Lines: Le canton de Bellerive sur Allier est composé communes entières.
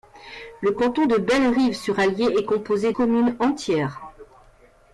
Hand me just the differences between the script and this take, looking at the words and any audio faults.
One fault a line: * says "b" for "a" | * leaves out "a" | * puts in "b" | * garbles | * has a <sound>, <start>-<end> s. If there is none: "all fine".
all fine